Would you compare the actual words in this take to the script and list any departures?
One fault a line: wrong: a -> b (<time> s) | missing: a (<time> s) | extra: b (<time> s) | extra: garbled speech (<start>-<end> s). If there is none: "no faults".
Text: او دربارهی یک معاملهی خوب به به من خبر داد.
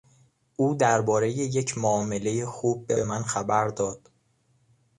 no faults